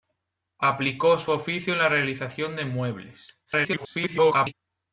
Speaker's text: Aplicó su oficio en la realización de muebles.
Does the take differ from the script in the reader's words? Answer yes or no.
yes